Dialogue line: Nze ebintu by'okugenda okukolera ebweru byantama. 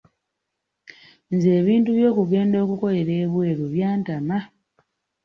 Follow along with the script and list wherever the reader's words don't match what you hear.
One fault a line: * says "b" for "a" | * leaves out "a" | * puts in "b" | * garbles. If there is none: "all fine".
all fine